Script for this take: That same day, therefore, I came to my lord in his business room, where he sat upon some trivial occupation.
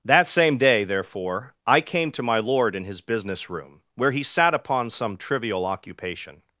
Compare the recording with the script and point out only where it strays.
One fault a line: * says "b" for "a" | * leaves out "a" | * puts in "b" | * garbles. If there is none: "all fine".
all fine